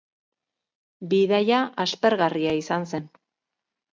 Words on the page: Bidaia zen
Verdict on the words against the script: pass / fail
fail